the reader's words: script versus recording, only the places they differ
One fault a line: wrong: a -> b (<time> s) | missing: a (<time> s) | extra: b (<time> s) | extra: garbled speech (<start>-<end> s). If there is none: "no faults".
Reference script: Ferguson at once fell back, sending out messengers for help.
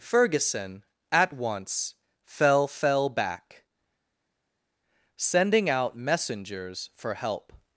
extra: fell (2.7 s)